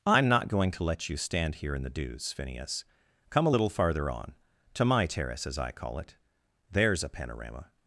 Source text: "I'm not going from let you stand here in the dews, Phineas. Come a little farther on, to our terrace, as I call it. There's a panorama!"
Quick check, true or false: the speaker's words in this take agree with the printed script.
false